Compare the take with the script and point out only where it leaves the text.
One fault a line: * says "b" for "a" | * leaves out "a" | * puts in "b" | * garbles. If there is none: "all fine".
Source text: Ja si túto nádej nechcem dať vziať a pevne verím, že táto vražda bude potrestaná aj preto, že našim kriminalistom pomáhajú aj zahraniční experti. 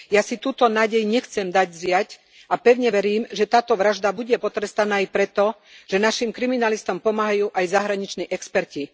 all fine